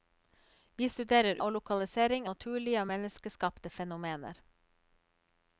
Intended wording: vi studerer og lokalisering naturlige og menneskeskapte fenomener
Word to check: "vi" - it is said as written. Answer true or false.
true